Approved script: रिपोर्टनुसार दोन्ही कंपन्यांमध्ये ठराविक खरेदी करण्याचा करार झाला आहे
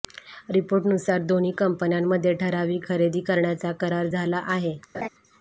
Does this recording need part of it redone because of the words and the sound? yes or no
yes